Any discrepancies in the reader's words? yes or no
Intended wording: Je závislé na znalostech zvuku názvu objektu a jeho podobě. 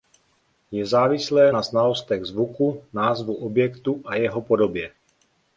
no